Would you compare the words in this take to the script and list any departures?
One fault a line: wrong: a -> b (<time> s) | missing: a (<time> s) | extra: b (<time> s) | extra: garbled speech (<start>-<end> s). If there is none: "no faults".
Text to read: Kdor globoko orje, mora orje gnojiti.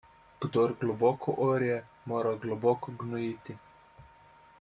wrong: orje -> globoko (2.5 s)